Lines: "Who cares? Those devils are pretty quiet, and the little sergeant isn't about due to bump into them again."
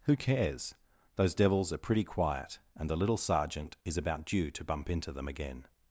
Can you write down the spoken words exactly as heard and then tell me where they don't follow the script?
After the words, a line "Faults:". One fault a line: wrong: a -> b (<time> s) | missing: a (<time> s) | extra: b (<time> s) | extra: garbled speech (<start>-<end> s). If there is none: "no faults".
"Who cares? Those devils are pretty quiet, and the little sergeant is about due to bump into them again."
Faults:
wrong: isn't -> is (3.9 s)